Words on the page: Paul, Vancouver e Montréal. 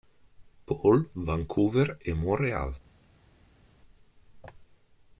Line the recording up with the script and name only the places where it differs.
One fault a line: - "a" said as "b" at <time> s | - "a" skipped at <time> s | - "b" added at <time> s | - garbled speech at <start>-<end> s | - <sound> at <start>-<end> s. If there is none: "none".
none